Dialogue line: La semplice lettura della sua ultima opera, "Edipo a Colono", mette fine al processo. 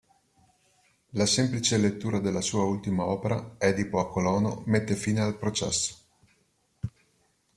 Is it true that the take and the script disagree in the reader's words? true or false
false